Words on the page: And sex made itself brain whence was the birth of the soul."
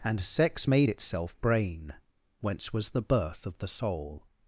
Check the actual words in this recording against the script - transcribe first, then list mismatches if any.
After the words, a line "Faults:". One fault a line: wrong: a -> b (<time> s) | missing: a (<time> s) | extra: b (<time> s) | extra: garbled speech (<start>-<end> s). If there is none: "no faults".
And sex made itself brain whence was the birth of the soul."
Faults:
no faults